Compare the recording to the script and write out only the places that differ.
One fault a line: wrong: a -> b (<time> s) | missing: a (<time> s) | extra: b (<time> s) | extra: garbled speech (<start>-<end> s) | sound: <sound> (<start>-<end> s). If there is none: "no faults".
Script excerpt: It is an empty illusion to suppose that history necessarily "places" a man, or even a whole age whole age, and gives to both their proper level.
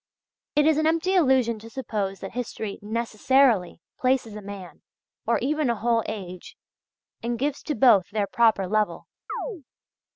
missing: whole age (6.6 s)
sound: chirp (9.3-9.6 s)